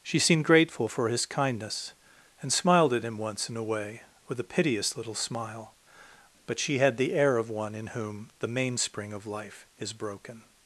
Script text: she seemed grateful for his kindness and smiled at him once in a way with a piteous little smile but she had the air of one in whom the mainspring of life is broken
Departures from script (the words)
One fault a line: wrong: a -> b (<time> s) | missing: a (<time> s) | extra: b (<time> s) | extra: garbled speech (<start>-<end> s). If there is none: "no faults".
no faults